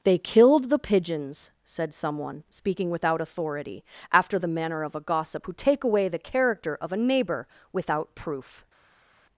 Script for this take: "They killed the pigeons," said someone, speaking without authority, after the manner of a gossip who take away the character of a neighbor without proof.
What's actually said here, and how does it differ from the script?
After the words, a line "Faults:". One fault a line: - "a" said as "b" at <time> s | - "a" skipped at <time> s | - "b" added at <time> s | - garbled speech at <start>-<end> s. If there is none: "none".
"They killed the pigeons," said someone, speaking without authority, after the manner of a gossip who take away the character of a neighbor without proof.
Faults:
none